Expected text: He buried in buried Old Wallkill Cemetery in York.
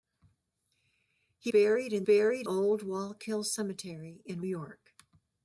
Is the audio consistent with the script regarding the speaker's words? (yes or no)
yes